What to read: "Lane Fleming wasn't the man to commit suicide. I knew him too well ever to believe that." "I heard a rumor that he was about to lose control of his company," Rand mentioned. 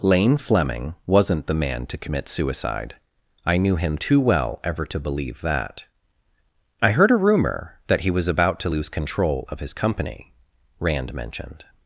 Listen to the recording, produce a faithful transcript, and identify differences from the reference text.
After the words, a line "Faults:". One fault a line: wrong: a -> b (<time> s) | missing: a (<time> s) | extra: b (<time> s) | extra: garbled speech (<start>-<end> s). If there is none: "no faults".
"Lane Fleming wasn't the man to commit suicide. I knew him too well ever to believe that." "I heard a rumor that he was about to lose control of his company," Rand mentioned.
Faults:
no faults